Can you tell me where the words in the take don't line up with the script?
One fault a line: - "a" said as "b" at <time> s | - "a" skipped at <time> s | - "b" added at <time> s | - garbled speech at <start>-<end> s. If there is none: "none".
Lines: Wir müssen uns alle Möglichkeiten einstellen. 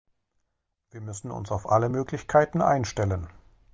- "auf" added at 1.5 s